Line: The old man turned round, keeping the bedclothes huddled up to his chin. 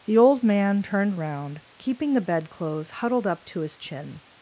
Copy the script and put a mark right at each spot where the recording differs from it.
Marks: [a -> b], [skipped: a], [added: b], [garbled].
The old man turned round, keeping the bedclothes huddled up to his chin.